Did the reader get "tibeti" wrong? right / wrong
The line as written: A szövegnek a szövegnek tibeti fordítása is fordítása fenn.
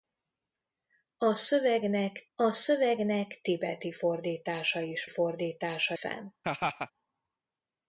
right